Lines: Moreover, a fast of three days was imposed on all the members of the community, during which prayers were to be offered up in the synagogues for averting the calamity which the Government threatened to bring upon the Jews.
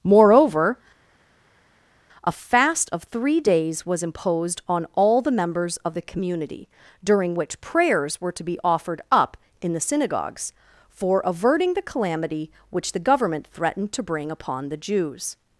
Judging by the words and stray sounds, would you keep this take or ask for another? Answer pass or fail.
pass